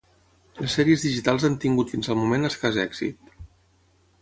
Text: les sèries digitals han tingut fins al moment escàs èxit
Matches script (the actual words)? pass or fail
pass